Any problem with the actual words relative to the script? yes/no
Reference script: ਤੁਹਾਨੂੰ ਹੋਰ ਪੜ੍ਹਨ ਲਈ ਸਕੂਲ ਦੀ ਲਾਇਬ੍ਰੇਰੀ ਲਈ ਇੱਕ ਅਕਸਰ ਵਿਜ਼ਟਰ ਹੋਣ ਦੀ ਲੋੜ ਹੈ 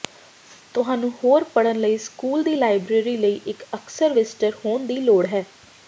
no